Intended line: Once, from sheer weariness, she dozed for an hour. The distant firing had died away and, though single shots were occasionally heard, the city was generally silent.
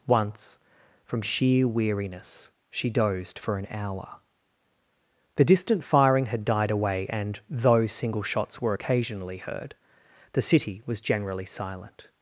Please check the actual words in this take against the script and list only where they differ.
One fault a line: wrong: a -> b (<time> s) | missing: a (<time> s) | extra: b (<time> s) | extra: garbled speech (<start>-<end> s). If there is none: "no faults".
no faults